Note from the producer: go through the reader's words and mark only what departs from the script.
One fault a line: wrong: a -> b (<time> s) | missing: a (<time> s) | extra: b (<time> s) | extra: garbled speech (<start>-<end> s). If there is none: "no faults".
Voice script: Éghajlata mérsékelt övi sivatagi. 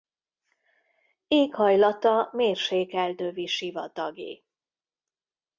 no faults